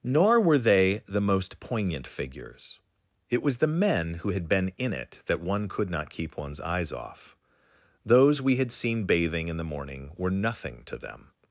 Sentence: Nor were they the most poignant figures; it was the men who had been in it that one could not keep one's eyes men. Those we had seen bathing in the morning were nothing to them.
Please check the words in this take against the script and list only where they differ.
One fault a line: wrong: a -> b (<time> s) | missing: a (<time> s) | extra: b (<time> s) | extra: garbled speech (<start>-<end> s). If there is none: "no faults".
wrong: men -> off (6.9 s)